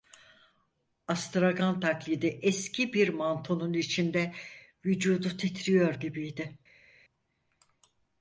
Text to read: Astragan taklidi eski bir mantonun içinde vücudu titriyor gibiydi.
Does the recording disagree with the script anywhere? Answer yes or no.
no